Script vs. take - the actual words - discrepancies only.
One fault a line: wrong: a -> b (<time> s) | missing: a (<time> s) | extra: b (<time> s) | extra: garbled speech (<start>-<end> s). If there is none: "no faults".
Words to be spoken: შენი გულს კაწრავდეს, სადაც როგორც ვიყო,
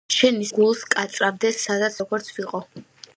no faults